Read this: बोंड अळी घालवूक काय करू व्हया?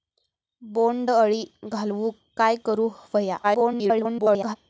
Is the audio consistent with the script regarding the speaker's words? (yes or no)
no